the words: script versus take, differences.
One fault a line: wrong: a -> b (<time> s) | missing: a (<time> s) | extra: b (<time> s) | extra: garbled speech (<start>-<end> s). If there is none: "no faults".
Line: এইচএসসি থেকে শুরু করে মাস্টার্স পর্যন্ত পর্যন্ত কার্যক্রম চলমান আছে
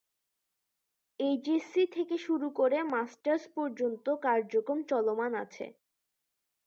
missing: পর্যন্ত (4.0 s)